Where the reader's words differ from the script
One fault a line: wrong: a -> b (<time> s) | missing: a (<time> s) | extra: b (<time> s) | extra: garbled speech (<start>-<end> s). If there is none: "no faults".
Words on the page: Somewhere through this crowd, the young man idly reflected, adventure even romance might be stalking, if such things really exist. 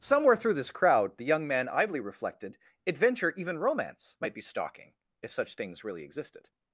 wrong: exist -> existed (6.1 s)